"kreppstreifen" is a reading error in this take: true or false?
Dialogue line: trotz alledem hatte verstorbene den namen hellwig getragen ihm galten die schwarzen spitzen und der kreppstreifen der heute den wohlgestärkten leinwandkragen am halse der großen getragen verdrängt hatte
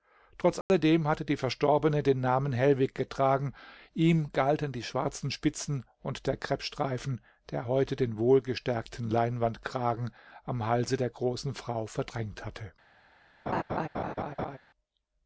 false